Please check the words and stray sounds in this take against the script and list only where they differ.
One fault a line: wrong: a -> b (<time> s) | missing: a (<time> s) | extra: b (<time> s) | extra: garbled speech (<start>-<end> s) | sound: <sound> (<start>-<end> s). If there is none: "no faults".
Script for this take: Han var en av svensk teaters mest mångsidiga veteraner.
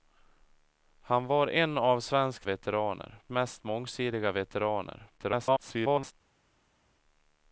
wrong: teaters -> veteraner (2.4 s)
extra: garbled speech (5.2-6.1 s)